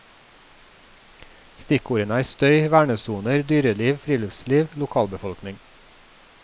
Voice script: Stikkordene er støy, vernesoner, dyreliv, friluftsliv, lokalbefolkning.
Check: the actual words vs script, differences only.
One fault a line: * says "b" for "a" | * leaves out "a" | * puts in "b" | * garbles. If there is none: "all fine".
all fine